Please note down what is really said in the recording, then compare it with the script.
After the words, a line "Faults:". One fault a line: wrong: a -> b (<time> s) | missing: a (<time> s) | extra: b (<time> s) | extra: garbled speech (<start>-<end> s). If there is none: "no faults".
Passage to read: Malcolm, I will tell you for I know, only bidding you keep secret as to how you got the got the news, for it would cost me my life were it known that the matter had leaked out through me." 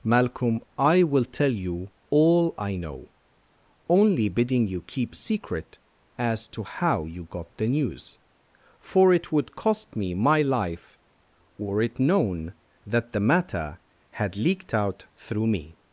Malcolm, I will tell you all I know, only bidding you keep secret as to how you got the news, for it would cost me my life were it known that the matter had leaked out through me."
Faults:
wrong: for -> all (2.1 s)
missing: got the (7.7 s)